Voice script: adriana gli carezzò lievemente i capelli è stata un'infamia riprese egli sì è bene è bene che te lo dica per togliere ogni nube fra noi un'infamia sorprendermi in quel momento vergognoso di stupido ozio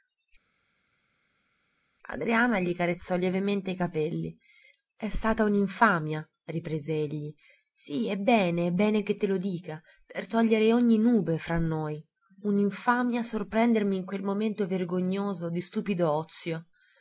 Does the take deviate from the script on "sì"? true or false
false